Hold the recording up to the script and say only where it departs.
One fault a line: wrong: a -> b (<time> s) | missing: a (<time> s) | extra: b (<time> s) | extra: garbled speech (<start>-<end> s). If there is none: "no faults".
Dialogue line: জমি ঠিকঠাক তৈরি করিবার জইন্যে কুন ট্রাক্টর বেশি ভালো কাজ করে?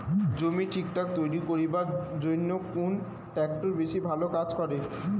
no faults